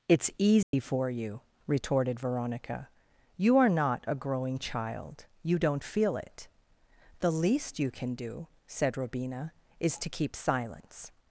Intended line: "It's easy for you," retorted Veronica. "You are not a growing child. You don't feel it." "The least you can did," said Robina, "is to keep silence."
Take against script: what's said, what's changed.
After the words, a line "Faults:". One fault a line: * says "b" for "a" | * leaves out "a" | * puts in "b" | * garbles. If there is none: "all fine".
"It's easy for you," retorted Veronica. "You are not a growing child. You don't feel it." "The least you can do," said Robina, "is to keep silence."
Faults:
* says "do" for "did"